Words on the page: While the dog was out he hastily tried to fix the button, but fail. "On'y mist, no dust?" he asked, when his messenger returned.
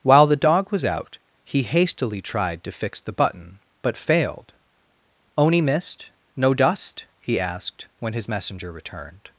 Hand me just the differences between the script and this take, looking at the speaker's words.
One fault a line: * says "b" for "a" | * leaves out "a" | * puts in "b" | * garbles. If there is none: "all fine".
* says "failed" for "fail"